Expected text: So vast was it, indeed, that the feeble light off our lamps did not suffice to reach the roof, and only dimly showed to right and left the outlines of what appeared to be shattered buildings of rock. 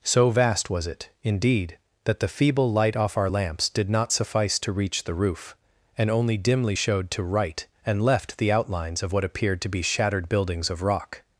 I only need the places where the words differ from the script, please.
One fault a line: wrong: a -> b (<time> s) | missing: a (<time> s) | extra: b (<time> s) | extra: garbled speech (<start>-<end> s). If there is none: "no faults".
no faults